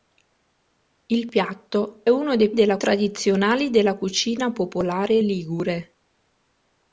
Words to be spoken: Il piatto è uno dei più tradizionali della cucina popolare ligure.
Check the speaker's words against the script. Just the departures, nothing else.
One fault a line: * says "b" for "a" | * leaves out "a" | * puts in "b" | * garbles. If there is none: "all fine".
* leaves out "è"
* says "della" for "più"